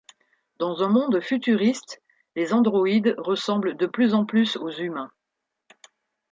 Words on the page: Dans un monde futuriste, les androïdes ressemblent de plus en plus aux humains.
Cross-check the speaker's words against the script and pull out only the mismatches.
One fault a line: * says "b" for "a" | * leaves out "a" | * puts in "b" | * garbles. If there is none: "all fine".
all fine